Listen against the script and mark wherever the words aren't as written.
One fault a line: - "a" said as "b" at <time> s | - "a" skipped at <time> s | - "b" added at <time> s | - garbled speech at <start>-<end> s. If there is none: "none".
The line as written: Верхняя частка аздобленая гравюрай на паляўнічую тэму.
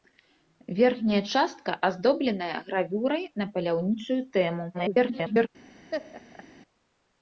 - garbled speech at 4.7-5.5 s